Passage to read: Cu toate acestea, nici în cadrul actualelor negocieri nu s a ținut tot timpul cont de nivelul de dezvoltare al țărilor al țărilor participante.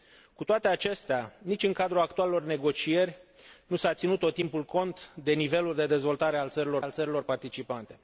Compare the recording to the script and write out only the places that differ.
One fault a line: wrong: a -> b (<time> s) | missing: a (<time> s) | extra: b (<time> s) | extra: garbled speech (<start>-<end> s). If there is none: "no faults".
no faults